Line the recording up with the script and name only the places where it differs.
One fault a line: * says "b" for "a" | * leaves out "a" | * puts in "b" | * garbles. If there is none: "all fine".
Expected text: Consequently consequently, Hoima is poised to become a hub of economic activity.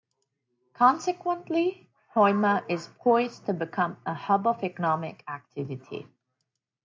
* leaves out "consequently"